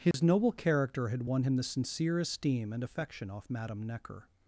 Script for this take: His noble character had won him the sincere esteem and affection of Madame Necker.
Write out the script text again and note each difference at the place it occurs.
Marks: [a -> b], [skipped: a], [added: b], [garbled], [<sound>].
His [dropout] noble character had won him the sincere esteem and affection [of -> off] Madame Necker.